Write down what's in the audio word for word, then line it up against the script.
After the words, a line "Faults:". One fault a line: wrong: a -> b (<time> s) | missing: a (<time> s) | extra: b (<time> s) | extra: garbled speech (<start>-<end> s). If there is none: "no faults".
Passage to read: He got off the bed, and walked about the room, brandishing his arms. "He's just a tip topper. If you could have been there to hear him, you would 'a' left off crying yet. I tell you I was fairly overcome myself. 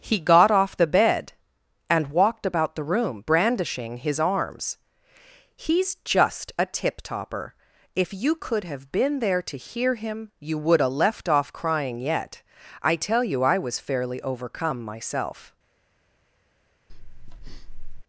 He got off the bed, and walked about the room, brandishing his arms. "He's just a tip topper. If you could have been there to hear him, you would 'a' left off crying yet. I tell you I was fairly overcome myself.
Faults:
no faults